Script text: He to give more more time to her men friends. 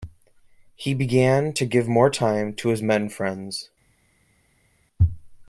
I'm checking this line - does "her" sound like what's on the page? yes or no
no